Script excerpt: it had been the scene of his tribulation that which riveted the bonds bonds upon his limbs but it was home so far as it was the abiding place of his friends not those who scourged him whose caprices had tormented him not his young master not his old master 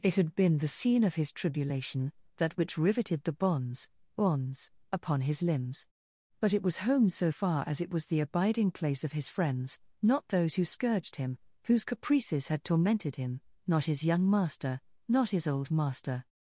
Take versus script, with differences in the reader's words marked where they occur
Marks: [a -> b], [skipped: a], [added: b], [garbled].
it had been the scene of his tribulation that which riveted the bonds bonds upon his limbs but it was home so far as it was the abiding place of his friends not those who scourged him whose caprices had tormented him not his young master not his old master